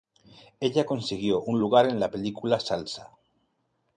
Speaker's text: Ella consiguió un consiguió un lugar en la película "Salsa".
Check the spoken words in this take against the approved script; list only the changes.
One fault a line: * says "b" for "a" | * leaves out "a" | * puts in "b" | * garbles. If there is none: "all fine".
* leaves out "consiguió un"